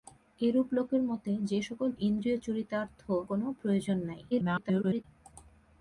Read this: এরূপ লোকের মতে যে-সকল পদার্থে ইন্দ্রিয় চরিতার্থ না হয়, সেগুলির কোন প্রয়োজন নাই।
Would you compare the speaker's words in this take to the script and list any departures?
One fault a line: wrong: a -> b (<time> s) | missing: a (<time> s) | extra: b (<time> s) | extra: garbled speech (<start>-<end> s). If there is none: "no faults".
missing: পদার্থে (1.9 s)
missing: না হয় সেগুলির (3.0 s)
extra: garbled speech (4.3-5.0 s)